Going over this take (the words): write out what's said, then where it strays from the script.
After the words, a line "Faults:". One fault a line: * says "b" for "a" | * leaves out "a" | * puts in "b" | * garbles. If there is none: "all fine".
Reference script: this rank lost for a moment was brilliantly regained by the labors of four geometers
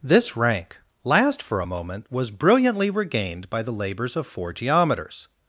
this rank last for a moment was brilliantly regained by the labors of four geometers
Faults:
* says "last" for "lost"